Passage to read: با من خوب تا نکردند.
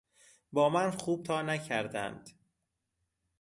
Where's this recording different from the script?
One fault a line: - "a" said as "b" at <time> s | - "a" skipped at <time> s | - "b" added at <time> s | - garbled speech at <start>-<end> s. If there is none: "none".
none